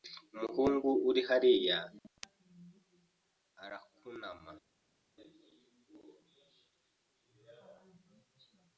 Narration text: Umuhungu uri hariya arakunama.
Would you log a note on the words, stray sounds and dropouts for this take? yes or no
no